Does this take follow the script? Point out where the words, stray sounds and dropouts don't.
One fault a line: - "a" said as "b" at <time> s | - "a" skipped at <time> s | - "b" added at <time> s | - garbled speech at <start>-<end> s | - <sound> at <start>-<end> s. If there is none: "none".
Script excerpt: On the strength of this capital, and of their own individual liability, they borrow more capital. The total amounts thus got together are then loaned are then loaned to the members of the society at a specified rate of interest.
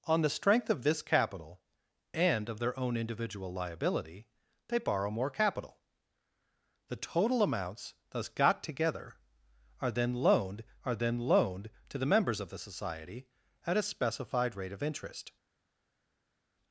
none